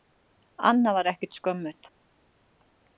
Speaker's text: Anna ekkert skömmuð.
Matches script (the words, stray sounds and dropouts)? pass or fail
fail